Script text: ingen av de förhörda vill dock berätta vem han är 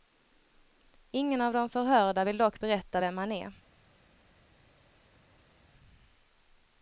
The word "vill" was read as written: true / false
true